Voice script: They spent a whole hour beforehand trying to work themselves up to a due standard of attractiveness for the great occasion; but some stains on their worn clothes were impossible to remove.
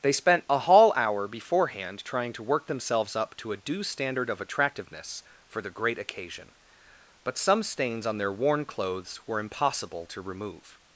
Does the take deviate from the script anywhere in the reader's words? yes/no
yes